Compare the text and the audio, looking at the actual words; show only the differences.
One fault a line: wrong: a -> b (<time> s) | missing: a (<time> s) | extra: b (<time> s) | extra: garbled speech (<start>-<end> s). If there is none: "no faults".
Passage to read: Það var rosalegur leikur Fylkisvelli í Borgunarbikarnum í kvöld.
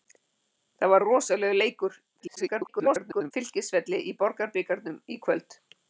extra: garbled speech (2.2-3.3 s)